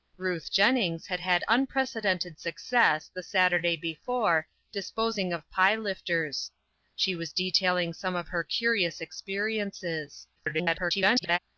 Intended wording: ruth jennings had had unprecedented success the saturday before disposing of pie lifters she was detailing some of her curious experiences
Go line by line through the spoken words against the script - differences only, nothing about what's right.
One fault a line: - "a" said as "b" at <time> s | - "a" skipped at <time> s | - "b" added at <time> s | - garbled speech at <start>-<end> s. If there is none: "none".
- garbled speech at 10.4-11.4 s